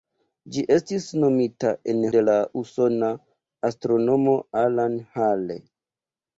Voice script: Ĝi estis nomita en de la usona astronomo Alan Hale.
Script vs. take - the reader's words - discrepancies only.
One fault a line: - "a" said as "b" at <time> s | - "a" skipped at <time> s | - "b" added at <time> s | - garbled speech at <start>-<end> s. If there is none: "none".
none